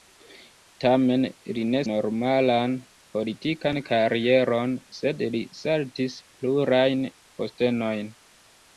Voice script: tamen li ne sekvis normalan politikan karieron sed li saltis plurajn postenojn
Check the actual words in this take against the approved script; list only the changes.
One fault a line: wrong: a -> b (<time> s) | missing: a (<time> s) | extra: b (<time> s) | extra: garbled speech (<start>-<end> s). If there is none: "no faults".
missing: sekvis (1.8 s)